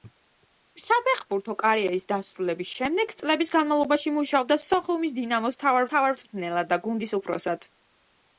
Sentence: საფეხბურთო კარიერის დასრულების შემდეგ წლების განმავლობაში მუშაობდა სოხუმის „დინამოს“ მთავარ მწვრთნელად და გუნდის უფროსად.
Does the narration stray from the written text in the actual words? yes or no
yes